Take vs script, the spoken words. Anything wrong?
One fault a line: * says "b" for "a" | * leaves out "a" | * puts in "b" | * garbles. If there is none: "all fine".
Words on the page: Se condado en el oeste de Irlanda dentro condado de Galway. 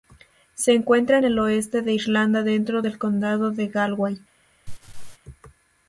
* says "encuentra" for "condado"
* puts in "del"